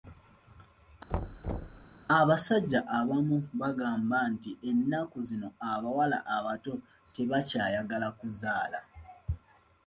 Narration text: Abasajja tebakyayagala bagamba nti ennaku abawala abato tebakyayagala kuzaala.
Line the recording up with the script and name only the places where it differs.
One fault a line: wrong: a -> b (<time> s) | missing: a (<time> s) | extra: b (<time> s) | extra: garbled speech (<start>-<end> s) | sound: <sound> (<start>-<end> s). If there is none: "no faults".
sound: thud (1.1-1.9 s)
wrong: tebakyayagala -> abamu (3.0 s)
extra: zino (5.3 s)